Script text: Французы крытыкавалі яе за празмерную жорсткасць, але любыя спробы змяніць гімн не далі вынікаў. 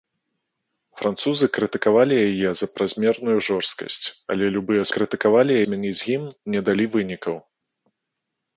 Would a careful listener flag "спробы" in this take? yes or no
yes